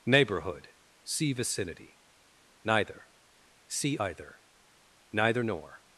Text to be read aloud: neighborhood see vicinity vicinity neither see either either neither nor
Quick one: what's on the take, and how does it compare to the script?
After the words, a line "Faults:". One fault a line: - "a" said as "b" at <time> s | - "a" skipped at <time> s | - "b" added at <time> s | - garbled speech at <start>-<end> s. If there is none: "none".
neighborhood see vicinity neither see either neither nor
Faults:
- "vicinity" skipped at 2.0 s
- "either" skipped at 4.4 s